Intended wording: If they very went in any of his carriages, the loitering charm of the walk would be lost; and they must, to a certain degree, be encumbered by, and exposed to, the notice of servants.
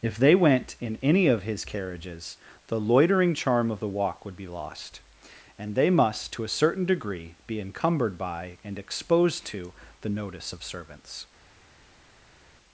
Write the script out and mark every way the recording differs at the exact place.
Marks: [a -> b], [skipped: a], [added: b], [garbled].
If they [skipped: very] went in any of his carriages, the loitering charm of the walk would be lost; and they must, to a certain degree, be encumbered by, and exposed to, the notice of servants.